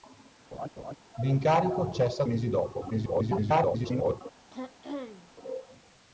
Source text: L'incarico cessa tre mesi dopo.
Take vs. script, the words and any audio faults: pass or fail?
fail